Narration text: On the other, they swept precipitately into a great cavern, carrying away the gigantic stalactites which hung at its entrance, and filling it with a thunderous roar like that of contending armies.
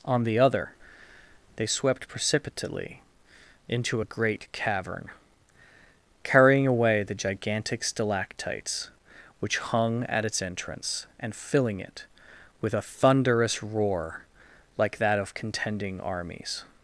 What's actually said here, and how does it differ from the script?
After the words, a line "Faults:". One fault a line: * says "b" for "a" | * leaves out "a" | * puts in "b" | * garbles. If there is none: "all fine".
On the other, they swept precipitately into a great cavern, carrying away the gigantic stalactites which hung at its entrance, and filling it with a thunderous roar like that of contending armies.
Faults:
all fine